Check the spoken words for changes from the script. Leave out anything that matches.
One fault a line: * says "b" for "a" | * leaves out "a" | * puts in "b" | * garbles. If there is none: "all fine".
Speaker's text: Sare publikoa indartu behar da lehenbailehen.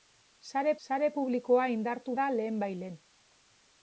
* puts in "sare"
* leaves out "behar"